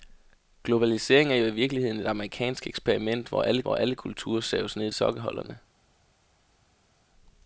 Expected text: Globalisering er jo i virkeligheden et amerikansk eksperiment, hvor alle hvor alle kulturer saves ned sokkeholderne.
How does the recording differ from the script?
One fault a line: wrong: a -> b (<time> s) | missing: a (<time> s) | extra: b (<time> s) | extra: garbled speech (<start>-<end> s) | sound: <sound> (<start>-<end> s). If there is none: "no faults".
no faults